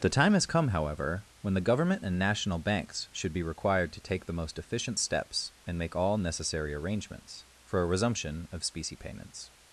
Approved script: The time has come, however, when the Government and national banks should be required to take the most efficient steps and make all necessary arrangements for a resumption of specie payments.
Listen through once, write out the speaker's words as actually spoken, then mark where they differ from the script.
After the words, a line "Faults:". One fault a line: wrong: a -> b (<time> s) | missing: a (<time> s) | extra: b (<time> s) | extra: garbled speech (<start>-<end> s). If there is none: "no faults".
The time has come, however, when the Government and national banks should be required to take the most efficient steps and make all necessary arrangements for a resumption of specie payments.
Faults:
no faults